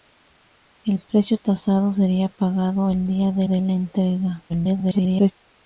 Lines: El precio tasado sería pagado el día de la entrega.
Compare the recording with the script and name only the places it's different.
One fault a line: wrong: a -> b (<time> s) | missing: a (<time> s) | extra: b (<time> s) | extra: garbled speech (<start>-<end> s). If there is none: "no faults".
extra: de (3.4 s)
extra: garbled speech (4.5-5.3 s)